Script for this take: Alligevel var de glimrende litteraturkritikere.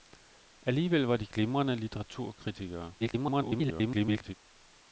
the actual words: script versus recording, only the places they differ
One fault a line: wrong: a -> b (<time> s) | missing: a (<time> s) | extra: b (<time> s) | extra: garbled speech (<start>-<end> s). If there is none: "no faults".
extra: garbled speech (3.0-4.3 s)